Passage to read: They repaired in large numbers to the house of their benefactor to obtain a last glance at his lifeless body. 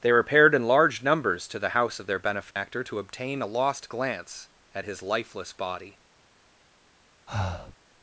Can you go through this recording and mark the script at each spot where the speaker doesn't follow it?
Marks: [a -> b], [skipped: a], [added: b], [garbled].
They repaired in large numbers to the house of their benefactor to obtain a [last -> lost] glance at his lifeless body.